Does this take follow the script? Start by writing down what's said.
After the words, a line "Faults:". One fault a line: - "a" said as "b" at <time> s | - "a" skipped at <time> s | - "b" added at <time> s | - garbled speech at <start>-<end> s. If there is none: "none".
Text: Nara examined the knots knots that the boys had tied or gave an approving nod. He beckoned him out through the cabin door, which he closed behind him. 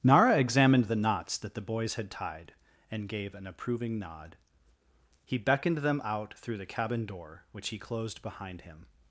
Nara examined the knots that the boys had tied and gave an approving nod. He beckoned them out through the cabin door, which he closed behind him.
Faults:
- "knots" skipped at 1.4 s
- "or" said as "and" at 2.9 s
- "him" said as "them" at 5.8 s